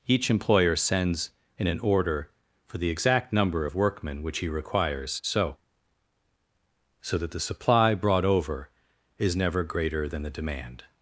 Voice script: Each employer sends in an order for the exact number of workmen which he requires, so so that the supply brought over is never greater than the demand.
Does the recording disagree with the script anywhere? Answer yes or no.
no